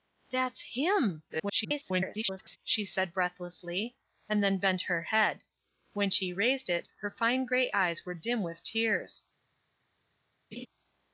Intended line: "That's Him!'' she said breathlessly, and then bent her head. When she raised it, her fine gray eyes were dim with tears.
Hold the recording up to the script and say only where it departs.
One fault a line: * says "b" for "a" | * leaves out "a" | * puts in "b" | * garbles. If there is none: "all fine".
* garbles